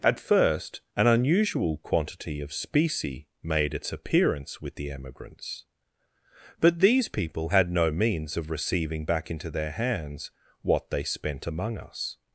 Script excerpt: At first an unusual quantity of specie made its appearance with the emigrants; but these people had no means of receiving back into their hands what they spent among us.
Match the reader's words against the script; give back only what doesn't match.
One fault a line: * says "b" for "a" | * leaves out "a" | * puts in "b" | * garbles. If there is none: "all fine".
all fine